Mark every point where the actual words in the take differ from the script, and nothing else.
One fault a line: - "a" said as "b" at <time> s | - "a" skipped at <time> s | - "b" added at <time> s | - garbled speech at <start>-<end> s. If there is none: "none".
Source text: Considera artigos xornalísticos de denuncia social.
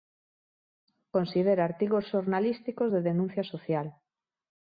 none